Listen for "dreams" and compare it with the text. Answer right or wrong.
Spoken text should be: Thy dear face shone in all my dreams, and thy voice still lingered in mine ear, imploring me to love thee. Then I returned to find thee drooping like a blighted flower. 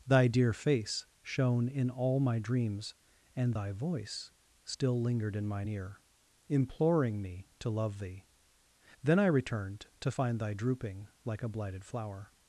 right